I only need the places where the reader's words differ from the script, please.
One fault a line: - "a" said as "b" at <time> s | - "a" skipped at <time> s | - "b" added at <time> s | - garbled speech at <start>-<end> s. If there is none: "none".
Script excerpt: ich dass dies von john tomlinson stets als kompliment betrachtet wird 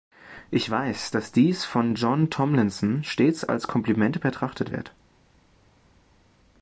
- "weiß" added at 0.7 s